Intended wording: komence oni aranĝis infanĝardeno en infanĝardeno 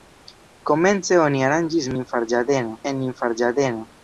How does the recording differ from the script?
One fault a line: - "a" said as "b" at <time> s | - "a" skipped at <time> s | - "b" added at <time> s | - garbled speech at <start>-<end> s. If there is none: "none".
none